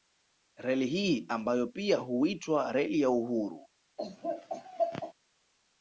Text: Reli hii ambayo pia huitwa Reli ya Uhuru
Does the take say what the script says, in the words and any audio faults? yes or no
no